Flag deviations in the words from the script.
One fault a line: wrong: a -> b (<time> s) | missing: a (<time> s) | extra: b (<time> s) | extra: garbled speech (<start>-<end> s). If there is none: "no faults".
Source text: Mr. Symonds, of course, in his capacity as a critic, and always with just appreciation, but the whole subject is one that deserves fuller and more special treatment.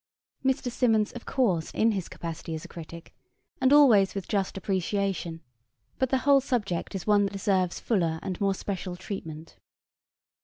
no faults